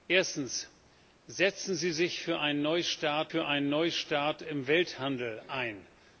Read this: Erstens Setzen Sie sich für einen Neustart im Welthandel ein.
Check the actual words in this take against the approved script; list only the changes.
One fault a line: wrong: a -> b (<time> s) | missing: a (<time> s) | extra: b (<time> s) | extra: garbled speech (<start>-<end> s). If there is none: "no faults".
extra: für einen Neustart (3.3 s)